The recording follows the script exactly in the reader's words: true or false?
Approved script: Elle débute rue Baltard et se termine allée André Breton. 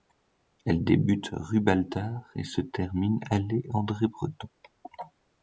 true